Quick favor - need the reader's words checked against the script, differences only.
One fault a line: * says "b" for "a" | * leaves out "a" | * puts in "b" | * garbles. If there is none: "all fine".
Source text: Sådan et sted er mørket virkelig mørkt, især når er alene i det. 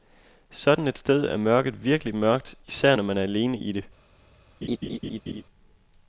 * puts in "man"